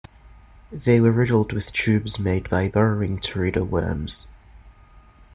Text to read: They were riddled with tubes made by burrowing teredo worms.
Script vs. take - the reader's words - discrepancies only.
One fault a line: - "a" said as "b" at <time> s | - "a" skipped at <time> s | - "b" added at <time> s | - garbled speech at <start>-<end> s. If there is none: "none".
none